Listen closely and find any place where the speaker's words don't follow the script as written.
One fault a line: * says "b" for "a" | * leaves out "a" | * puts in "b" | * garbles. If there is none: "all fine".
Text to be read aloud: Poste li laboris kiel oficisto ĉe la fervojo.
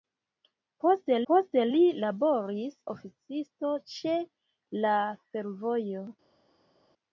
* puts in "poste"
* leaves out "kiel"